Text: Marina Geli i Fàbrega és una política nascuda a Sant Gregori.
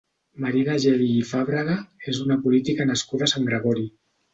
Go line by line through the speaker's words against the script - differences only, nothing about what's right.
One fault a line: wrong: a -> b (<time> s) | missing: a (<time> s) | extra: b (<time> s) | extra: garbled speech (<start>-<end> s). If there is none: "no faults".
no faults